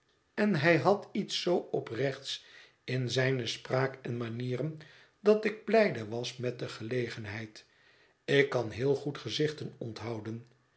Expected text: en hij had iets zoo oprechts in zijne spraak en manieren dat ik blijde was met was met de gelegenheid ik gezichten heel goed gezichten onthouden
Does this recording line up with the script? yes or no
no